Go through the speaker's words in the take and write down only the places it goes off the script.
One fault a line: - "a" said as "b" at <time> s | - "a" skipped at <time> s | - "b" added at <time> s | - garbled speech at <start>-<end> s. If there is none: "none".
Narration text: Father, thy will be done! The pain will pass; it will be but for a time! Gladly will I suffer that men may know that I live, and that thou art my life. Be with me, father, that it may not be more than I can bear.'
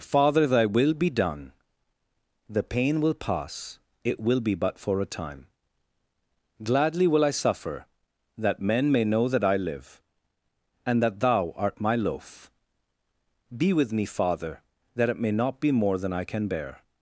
- "life" said as "loaf" at 12.0 s